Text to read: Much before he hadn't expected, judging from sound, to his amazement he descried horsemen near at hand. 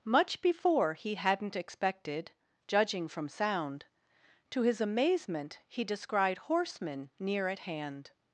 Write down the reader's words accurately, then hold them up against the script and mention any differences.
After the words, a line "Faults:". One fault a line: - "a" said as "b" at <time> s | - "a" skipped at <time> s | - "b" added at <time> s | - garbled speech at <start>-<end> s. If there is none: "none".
Much before he hadn't expected, judging from sound, to his amazement he descried horsemen near at hand.
Faults:
none